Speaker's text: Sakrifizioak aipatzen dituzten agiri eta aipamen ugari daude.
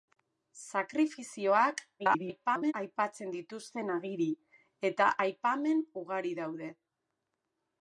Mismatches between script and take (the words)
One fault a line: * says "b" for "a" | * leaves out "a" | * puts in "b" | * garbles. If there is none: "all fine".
* garbles